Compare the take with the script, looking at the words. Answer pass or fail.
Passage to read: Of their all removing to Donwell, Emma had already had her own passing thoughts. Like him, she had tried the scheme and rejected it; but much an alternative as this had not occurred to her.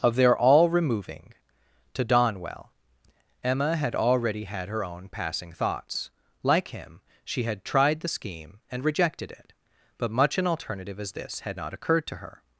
pass